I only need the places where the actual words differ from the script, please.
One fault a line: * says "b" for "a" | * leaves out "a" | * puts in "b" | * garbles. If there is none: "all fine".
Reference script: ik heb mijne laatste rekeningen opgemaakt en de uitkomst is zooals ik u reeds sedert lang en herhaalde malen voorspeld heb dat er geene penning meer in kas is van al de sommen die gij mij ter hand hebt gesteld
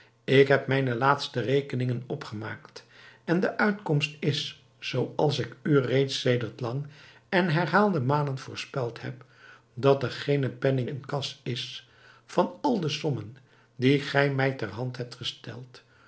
* leaves out "meer"